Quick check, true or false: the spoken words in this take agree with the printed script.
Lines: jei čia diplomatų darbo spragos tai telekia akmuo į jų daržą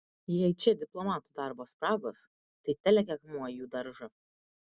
true